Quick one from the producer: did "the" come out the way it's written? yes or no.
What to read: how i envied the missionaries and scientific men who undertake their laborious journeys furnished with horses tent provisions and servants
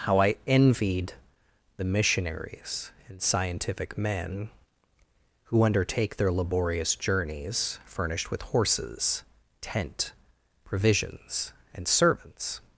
yes